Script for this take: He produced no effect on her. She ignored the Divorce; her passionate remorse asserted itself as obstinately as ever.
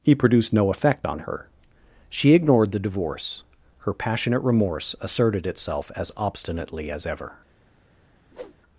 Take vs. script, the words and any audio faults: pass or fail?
fail